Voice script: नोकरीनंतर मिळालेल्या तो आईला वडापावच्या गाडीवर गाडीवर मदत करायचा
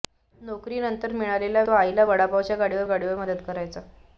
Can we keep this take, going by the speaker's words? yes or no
yes